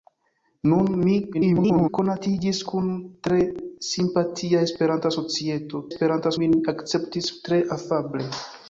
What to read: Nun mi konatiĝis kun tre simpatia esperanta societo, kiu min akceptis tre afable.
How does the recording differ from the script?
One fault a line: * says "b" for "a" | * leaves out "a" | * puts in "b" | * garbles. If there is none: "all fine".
* garbles
* says "esperanta" for "kiu"